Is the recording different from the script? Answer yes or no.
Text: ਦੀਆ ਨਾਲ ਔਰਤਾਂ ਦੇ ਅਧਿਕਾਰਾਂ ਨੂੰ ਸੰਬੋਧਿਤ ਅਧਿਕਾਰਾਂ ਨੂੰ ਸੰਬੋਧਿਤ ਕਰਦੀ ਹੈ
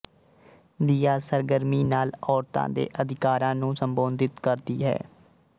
yes